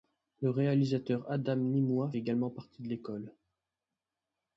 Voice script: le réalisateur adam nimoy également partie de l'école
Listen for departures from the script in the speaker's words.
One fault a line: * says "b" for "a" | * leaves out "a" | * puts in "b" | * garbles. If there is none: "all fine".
all fine